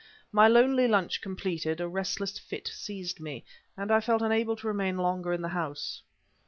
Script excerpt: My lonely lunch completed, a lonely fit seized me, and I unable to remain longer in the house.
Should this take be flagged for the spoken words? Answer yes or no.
yes